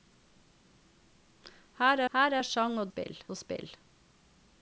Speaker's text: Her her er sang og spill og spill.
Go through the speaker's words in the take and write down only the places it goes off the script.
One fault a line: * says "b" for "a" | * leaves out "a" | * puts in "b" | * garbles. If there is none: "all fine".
all fine